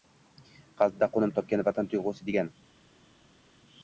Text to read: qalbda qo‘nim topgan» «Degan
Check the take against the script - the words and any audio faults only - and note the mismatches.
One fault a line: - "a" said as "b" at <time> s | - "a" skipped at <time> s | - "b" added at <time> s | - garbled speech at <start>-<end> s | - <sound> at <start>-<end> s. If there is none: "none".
- "Vatan tuyg‘usi" added at 1.7 s